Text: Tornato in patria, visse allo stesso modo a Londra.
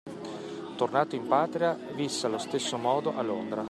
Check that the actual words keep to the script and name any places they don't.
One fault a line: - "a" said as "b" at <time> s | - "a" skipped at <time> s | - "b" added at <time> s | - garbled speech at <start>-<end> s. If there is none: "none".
none